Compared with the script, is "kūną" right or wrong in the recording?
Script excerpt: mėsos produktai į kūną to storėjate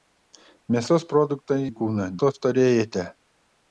right